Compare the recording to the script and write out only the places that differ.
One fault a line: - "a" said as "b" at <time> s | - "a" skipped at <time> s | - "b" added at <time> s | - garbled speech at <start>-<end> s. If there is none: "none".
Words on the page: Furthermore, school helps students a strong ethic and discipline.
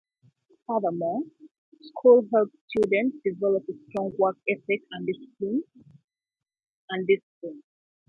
- "develop" added at 3.2 s
- "work" added at 4.2 s